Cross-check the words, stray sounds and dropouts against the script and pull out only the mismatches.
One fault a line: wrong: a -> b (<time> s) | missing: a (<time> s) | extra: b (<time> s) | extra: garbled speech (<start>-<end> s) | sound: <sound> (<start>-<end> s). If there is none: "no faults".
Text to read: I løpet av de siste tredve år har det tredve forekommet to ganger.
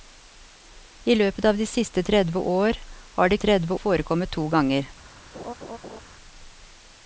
sound: laugh (5.3-6.0 s)